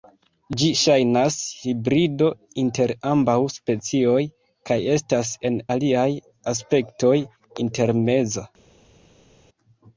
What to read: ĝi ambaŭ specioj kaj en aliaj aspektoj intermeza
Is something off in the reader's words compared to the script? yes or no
yes